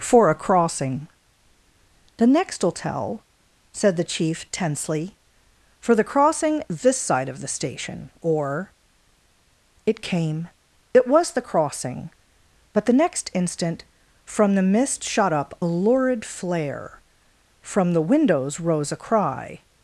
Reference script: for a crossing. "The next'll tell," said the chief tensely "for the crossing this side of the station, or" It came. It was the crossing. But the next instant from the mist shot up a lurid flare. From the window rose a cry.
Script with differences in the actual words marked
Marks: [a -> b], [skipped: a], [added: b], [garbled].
for a crossing. "The next'll tell," said the chief tensely "for the crossing this side of the station, or" It came. It was the crossing. But the next instant from the mist shot up a lurid flare. From the [window -> windows] rose a cry.